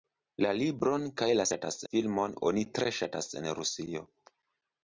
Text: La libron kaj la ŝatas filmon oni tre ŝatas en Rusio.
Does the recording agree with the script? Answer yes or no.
yes